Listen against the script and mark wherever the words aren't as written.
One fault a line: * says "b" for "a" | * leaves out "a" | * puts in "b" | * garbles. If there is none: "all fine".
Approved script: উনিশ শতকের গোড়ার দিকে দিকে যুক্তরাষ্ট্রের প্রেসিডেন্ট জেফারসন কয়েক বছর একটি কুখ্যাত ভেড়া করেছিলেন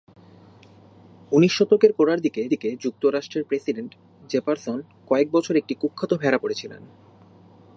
all fine